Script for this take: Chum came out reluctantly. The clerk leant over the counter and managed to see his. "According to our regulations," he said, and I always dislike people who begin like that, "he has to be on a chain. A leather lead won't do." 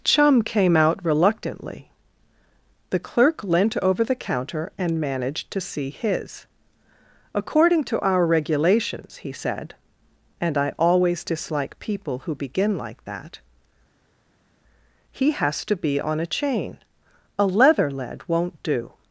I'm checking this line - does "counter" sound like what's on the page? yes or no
yes